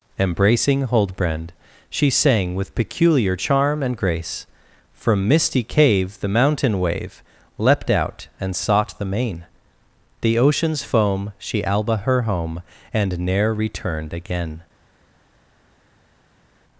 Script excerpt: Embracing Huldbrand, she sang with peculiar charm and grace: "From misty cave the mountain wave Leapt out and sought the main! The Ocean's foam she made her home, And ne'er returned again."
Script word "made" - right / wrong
wrong